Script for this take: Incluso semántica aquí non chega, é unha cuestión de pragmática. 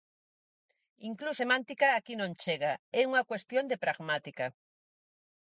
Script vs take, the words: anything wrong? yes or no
no